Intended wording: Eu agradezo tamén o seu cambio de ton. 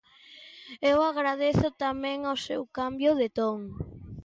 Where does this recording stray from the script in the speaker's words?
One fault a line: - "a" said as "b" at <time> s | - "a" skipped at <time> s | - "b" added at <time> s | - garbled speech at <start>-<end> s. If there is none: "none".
none